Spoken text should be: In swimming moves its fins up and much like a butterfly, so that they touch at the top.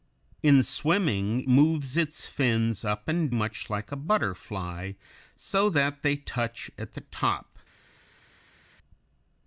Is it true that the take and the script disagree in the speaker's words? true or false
false